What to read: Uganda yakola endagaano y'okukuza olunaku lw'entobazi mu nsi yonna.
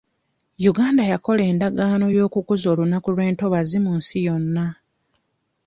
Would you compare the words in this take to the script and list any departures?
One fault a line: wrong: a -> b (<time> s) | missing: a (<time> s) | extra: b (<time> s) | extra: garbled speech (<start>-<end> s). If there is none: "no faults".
no faults